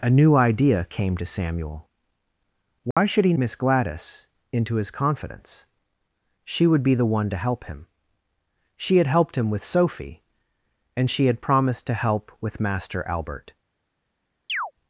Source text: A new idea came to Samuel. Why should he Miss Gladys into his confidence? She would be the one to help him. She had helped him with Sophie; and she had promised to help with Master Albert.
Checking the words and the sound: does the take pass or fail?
fail